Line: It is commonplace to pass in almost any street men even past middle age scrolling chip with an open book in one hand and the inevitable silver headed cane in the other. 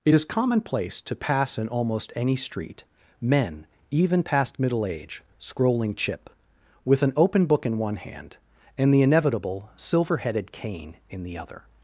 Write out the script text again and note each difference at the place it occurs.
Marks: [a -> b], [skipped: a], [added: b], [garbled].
It is commonplace to pass in almost any street men even past middle age scrolling chip with an open book in one hand and the inevitable silver headed cane in the other.